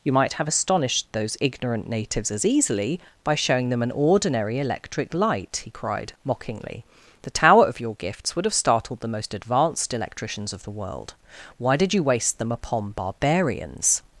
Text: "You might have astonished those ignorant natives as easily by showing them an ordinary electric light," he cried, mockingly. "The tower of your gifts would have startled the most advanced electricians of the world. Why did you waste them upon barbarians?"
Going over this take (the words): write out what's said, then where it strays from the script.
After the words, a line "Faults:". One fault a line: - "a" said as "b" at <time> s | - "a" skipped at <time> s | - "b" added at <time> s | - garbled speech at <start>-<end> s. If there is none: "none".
"You might have astonished those ignorant natives as easily by showing them an ordinary electric light," he cried, mockingly. "The tower of your gifts would have startled the most advanced electricians of the world. Why did you waste them upon barbarians?"
Faults:
none